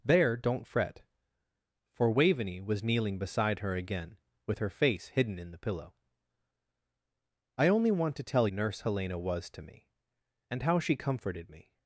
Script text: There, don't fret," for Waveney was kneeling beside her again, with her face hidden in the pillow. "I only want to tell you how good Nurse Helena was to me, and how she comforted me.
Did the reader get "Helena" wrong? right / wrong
right